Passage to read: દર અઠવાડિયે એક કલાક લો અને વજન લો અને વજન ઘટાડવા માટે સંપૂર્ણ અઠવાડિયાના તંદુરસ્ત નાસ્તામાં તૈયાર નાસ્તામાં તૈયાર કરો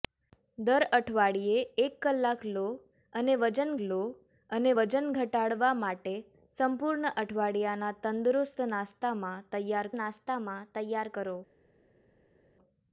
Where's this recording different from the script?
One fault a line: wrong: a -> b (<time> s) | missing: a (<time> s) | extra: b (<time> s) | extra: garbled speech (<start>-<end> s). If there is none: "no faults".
no faults